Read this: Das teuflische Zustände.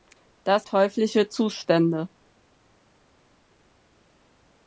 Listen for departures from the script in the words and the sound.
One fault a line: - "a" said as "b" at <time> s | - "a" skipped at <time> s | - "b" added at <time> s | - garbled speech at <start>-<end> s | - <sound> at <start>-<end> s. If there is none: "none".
none